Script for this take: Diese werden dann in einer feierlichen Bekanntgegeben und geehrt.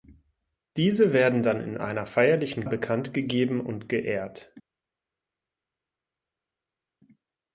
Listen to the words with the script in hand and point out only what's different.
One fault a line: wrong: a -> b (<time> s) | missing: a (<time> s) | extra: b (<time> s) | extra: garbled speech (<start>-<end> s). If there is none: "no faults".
no faults